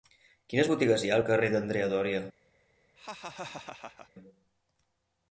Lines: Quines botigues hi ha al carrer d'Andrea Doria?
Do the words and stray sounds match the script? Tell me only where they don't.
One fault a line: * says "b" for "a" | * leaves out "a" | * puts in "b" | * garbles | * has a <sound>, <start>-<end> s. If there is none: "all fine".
* has a laugh, 3.0-4.1 s